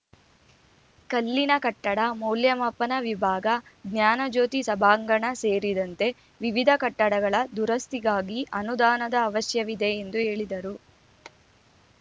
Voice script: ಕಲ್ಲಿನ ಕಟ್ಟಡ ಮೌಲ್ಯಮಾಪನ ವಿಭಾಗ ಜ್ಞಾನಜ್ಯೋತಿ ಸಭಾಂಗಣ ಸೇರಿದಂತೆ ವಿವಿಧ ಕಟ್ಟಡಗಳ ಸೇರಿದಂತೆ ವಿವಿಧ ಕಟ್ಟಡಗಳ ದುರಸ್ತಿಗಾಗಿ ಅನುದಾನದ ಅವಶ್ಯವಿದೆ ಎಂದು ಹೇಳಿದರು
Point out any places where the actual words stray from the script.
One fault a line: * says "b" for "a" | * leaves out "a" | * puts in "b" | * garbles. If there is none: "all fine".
* leaves out "ಸೇರಿದಂತೆ ವಿವಿಧ ಕಟ್ಟಡಗಳ"